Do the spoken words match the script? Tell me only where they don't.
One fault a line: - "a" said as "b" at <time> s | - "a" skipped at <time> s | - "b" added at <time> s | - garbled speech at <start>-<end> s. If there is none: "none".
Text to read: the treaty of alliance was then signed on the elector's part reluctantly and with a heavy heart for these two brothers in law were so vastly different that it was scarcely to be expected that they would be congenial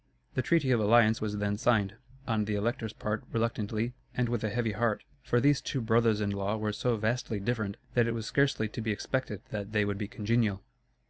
none